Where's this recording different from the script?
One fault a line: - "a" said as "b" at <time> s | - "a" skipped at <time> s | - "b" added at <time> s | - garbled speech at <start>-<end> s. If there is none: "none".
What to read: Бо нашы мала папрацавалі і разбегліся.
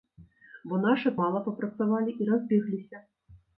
none